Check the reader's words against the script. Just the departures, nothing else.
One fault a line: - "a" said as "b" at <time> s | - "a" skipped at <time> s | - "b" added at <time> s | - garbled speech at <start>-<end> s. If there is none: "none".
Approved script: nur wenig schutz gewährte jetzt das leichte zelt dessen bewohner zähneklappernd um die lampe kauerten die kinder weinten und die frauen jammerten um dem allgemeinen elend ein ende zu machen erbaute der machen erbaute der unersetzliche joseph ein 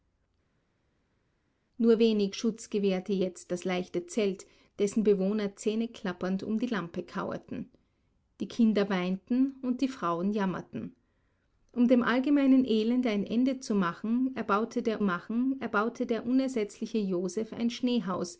none